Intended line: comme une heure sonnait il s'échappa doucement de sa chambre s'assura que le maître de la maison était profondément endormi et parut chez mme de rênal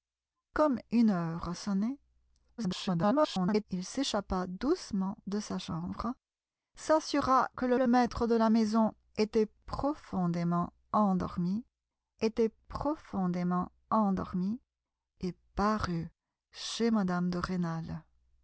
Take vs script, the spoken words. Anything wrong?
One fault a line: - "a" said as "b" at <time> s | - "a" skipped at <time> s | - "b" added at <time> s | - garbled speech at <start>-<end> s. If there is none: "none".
- garbled speech at 2.6-3.7 s
- "le" added at 7.7 s
- "était profondément endormi" added at 12.2 s